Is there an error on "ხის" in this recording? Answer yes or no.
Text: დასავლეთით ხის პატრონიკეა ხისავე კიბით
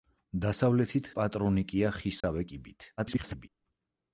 yes